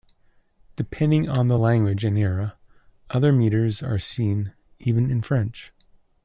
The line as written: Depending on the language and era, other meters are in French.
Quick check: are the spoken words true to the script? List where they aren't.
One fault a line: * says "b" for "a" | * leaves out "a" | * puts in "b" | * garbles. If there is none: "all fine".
* puts in "seen even"